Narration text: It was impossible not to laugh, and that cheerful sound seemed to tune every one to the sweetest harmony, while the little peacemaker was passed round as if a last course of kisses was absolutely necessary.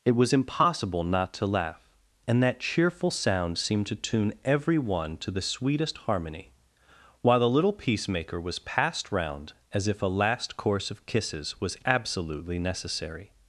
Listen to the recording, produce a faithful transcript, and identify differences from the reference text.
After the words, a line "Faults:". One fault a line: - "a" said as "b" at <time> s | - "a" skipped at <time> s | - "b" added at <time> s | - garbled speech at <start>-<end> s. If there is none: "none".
It was impossible not to laugh, and that cheerful sound seemed to tune every one to the sweetest harmony, while the little peacemaker was passed round as if a last course of kisses was absolutely necessary.
Faults:
none